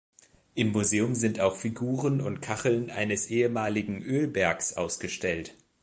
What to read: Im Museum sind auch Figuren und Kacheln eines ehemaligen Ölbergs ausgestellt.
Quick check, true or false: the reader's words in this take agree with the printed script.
true